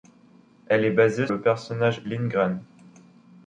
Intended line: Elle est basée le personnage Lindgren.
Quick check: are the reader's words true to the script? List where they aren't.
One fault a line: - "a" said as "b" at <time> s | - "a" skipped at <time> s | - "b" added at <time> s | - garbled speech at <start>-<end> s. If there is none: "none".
none